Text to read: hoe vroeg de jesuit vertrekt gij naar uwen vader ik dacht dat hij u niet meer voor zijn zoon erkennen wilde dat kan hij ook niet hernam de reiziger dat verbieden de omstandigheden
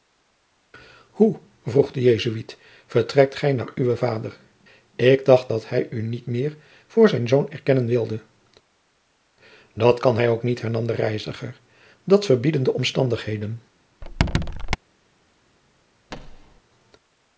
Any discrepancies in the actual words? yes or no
no